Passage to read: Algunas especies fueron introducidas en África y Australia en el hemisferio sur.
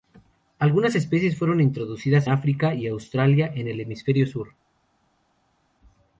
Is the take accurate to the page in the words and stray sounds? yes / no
no